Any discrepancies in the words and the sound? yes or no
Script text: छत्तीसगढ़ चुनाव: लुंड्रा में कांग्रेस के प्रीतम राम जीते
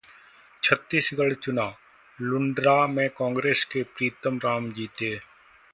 no